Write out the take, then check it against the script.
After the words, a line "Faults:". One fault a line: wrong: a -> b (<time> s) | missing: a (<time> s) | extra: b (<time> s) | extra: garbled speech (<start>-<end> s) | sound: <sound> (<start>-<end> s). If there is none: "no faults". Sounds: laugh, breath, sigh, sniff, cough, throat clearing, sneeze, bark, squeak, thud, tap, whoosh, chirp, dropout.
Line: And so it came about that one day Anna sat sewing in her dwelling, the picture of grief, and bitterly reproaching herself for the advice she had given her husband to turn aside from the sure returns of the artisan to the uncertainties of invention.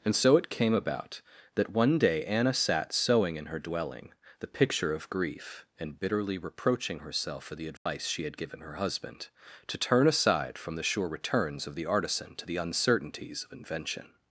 And so it came about that one day Anna sat sewing in her dwelling, the picture of grief, and bitterly reproaching herself for the advice she had given her husband to turn aside from the sure returns of the artisan to the uncertainties of invention.
Faults:
sound: dropout (7.8-7.9 s)